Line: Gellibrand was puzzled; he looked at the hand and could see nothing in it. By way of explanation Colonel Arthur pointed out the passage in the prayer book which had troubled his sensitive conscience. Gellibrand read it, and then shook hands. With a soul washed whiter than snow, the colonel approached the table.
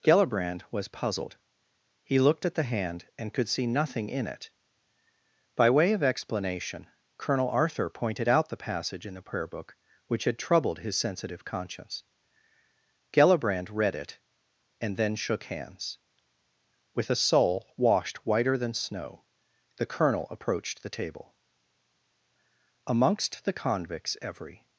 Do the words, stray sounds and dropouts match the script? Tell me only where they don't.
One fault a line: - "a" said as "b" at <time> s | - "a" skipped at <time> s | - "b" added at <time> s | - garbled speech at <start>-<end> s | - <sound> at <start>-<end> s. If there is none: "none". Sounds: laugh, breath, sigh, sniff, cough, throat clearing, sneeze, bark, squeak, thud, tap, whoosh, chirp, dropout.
- "Amongst the convicts every" added at 22.9 s